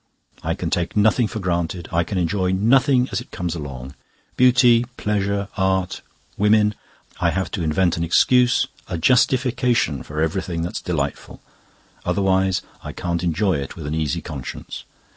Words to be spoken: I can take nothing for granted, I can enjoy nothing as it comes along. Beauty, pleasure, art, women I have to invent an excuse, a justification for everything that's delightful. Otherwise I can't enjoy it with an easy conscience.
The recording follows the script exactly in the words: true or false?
true